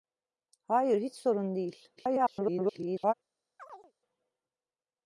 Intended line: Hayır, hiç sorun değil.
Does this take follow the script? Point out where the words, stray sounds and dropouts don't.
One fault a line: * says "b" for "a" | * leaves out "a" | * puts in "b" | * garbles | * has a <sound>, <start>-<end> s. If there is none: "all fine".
* garbles
* has a chirp, 3.6-3.9 s